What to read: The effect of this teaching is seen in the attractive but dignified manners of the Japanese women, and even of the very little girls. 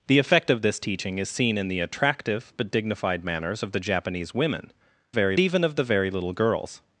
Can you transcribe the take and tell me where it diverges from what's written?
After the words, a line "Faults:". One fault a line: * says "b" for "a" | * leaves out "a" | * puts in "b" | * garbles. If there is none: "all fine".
The effect of this teaching is seen in the attractive but dignified manners of the Japanese women, very even of the very little girls.
Faults:
* says "very" for "and"